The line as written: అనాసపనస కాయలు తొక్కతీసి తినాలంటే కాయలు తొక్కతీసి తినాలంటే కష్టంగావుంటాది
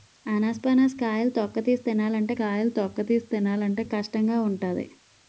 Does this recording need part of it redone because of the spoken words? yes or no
no